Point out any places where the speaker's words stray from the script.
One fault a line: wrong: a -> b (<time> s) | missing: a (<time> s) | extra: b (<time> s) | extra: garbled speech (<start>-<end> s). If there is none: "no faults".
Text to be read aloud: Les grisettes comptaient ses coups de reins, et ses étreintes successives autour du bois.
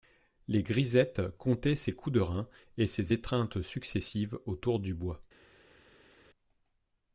no faults